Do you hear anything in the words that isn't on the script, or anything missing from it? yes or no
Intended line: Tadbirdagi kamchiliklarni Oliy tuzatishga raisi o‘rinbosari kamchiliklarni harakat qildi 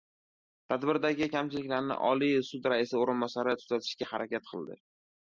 yes